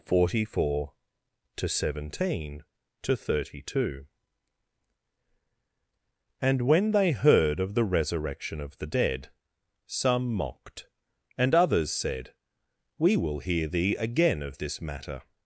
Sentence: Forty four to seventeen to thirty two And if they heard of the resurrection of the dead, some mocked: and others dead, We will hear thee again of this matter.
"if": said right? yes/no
no